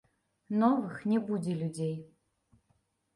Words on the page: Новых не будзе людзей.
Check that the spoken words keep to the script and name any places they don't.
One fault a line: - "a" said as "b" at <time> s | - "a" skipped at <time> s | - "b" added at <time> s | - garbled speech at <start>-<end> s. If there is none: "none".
none